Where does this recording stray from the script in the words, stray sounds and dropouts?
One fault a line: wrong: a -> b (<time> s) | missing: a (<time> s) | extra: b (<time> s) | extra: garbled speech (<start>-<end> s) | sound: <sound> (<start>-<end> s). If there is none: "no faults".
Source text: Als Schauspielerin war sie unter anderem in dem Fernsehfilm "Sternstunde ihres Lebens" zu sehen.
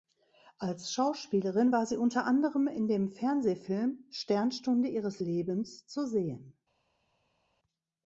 no faults